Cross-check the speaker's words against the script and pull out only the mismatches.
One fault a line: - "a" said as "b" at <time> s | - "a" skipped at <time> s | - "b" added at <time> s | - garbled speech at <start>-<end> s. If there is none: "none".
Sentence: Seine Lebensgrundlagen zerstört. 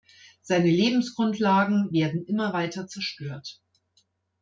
- "werden immer weiter" added at 1.9 s